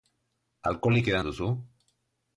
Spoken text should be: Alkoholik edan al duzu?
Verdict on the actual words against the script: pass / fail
fail